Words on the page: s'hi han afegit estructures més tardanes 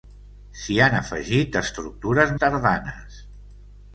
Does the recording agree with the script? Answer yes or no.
no